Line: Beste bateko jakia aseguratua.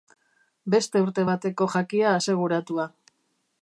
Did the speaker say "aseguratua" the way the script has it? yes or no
yes